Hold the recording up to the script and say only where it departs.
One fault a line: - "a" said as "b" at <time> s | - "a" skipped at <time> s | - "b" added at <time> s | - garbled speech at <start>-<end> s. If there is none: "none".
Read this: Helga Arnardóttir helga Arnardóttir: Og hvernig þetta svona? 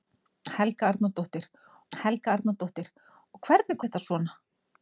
none